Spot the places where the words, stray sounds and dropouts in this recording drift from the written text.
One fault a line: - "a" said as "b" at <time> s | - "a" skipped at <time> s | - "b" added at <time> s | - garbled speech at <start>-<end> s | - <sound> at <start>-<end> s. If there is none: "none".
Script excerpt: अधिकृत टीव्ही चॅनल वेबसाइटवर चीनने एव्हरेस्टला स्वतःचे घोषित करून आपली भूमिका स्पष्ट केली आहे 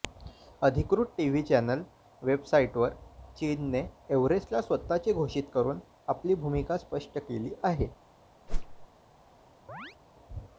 - whoosh at 8.5-8.9 s
- chirp at 9.7-10.0 s